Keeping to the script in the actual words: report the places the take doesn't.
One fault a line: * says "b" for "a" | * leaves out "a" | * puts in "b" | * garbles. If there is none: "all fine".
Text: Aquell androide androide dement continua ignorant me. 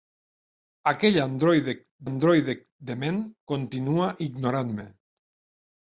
all fine